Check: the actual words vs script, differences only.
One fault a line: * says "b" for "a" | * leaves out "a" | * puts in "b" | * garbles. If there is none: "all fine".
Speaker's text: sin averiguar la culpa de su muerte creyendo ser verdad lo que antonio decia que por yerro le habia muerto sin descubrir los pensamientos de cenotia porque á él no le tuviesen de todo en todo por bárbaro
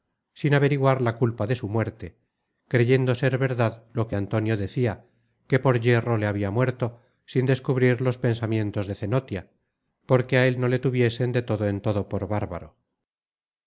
all fine